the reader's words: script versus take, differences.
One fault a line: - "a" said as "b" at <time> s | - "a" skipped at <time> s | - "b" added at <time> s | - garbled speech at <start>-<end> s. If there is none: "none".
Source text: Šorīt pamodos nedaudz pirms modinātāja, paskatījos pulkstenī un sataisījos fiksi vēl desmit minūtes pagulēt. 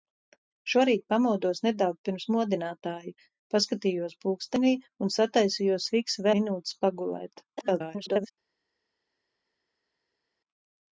- "vēl desmit" skipped at 6.3 s
- garbled speech at 7.6-8.3 s